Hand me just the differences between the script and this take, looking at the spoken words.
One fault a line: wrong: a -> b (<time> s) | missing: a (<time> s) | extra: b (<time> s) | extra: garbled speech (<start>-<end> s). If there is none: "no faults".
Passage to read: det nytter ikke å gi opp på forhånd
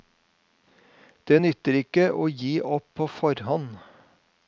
no faults